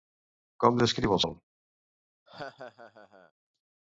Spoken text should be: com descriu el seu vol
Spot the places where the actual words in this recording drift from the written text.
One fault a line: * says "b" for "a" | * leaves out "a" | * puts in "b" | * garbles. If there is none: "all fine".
* leaves out "seu"